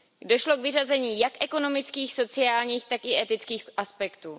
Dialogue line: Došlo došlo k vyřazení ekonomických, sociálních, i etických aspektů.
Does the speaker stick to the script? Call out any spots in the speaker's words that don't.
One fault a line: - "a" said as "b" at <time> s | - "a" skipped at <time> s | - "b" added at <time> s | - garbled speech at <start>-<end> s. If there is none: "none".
- "došlo" skipped at 0.6 s
- "jak" added at 1.2 s
- "tak" added at 2.9 s